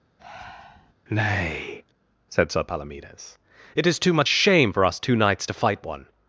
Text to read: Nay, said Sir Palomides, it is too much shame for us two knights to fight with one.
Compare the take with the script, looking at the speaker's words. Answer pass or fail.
fail